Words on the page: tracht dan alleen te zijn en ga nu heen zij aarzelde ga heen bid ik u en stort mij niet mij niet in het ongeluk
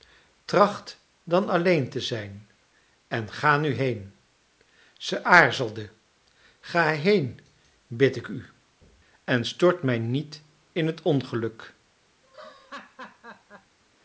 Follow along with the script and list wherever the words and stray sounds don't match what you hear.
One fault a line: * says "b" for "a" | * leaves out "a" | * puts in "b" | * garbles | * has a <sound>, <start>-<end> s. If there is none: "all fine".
* leaves out "mij niet"
* has a laugh, 12.2-13.8 s